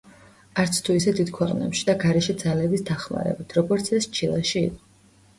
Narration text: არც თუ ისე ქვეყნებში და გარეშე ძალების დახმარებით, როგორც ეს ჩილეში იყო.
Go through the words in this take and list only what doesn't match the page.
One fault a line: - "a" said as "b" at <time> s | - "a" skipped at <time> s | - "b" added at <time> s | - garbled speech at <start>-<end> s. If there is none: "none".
- "დიდ" added at 1.2 s